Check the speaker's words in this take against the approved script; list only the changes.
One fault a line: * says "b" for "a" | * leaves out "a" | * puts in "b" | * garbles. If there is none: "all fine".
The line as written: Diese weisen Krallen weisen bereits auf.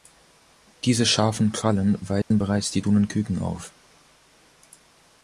* says "scharfen" for "weisen"
* puts in "die Dunenküken"